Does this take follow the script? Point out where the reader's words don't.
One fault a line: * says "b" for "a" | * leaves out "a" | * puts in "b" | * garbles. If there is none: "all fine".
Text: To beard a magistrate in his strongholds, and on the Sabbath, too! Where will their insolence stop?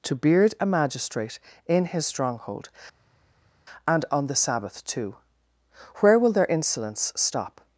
* says "stronghold" for "strongholds"